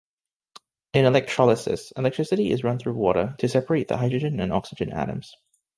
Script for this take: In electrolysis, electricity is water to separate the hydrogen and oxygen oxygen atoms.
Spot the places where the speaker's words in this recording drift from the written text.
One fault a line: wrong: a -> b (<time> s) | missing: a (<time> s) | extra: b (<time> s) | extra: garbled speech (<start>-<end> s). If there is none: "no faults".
extra: run through (2.6 s)
missing: oxygen (4.9 s)